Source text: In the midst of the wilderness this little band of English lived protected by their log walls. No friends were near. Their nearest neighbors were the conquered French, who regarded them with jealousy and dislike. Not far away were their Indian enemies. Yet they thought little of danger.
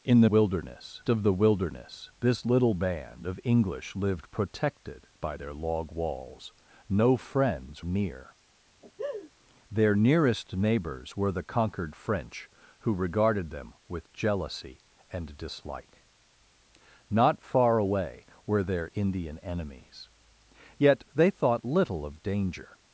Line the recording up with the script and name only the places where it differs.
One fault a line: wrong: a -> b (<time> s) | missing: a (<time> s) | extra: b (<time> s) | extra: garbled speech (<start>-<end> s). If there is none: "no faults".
wrong: midst -> wilderness (0.2 s)
missing: were (7.8 s)